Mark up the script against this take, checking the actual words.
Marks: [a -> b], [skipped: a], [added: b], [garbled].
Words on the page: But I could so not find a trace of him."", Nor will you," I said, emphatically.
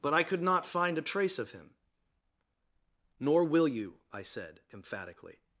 But I could [skipped: so] not find a trace of him."", Nor will you," I said, emphatically.